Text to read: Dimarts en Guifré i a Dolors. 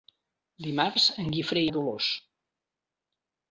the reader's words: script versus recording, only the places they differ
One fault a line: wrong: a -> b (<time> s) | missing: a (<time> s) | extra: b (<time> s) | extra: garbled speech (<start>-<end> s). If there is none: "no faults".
no faults